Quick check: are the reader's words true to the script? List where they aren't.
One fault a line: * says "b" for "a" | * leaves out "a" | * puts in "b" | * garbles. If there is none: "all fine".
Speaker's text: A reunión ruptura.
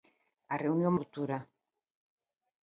all fine